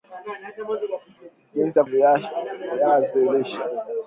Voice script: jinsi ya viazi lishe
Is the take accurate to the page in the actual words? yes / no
yes